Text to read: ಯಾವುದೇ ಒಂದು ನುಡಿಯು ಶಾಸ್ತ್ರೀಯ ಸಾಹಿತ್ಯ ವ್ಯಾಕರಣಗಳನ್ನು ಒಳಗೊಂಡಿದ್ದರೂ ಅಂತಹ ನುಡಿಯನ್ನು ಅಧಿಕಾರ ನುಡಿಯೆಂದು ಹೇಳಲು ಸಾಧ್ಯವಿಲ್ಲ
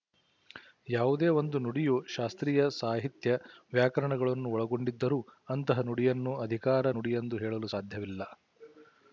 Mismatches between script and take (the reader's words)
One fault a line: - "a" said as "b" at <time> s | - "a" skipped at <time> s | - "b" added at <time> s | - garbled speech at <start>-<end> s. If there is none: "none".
none